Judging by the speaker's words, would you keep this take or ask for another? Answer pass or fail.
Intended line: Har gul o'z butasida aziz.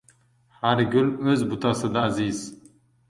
pass